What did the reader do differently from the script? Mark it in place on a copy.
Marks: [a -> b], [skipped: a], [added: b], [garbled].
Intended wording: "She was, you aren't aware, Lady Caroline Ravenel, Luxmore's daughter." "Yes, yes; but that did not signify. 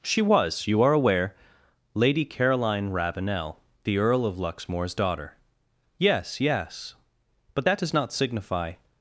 "She was, you [aren't -> are] aware, Lady Caroline Ravenel, [added: the Earl of] Luxmore's daughter." "Yes, yes; but that [did -> does] not signify.